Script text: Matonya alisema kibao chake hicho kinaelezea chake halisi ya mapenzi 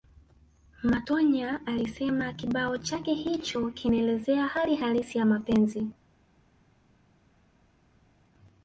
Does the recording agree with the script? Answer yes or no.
no